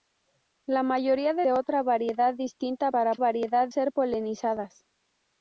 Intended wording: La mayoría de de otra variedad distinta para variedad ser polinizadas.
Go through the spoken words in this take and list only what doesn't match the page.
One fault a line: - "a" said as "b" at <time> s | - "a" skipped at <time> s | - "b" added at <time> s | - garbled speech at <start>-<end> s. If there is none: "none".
none